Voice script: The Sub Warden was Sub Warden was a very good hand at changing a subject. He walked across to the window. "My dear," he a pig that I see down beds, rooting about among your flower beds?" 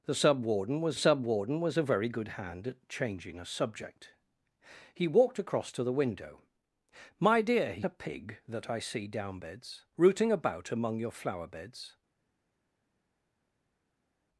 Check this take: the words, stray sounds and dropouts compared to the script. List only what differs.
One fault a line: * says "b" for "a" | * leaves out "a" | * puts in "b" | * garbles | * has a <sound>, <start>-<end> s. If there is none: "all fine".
all fine